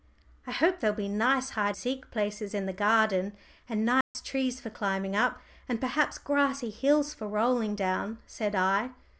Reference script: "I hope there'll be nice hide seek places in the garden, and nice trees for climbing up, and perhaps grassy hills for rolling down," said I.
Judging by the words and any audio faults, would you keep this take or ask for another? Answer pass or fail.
fail